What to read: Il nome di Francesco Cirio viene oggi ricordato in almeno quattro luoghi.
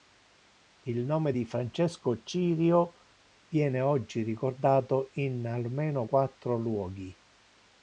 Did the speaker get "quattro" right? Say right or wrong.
right